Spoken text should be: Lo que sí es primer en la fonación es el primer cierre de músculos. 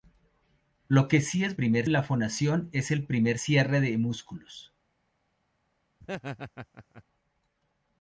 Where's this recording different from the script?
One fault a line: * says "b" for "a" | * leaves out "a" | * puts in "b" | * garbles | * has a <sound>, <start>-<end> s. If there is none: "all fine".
* has a laugh, 6.0-7.0 s